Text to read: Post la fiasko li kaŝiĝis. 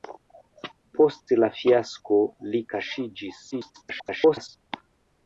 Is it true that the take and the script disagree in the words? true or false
true